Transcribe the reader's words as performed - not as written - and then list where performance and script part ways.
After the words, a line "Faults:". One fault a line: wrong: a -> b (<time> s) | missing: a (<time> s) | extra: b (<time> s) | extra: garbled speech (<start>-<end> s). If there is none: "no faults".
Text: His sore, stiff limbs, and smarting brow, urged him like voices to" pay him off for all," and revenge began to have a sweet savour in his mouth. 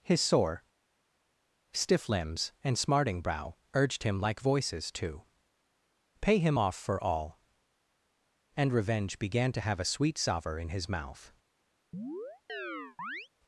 His sore, stiff limbs, and smarting brow, urged him like voices to" pay him off for all," and revenge began to have a sweet savour in his mouth.
Faults:
no faults